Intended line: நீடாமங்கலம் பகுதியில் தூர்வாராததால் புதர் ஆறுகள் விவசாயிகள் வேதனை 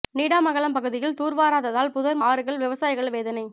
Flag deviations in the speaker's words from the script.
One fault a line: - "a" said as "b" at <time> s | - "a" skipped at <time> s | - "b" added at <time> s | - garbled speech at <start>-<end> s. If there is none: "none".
none